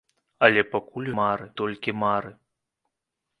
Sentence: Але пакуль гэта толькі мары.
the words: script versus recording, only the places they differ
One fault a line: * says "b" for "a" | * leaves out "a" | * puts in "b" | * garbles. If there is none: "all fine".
* says "мары" for "гэта"